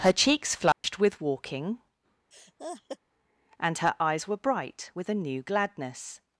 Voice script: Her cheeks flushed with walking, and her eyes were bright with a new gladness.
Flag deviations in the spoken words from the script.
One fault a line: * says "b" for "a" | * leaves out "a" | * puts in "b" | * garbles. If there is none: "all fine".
all fine